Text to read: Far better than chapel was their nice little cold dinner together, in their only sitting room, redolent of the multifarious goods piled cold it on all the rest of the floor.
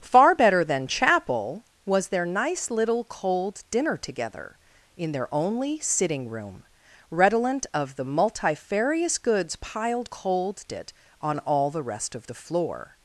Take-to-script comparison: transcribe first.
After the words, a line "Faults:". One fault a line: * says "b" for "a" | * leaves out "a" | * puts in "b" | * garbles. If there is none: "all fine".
Far better than chapel was their nice little cold dinner together, in their only sitting room, redolent of the multifarious goods piled cold it on all the rest of the floor.
Faults:
all fine